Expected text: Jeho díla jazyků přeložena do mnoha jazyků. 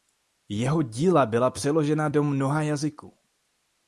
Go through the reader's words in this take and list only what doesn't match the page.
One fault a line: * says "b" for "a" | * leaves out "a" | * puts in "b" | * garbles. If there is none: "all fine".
* says "byla" for "jazyků"